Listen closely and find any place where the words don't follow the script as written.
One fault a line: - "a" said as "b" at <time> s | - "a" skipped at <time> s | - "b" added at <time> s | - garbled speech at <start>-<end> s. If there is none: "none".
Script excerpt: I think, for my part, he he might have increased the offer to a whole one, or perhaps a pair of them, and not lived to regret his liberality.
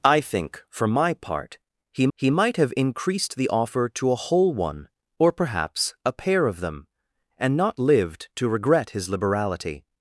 none